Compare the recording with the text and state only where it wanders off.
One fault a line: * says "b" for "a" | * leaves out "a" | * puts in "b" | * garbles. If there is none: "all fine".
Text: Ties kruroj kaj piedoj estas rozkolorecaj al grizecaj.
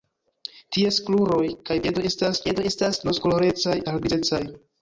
* puts in "piedoj estas"